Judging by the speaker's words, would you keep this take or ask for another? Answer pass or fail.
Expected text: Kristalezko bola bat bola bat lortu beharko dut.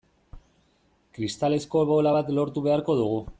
fail